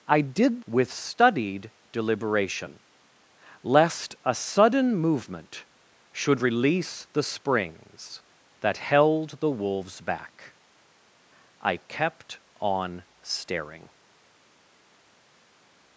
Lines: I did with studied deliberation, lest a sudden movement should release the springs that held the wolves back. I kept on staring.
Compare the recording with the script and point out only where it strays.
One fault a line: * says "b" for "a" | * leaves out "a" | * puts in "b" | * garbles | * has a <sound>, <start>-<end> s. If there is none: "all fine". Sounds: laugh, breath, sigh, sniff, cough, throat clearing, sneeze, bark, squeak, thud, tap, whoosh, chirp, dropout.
all fine